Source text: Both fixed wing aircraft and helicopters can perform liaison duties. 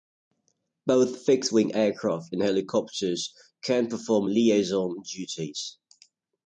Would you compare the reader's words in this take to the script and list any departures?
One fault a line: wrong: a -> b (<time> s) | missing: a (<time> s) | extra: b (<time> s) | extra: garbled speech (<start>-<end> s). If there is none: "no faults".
no faults